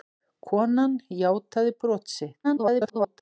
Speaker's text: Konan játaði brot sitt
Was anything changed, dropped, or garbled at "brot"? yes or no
no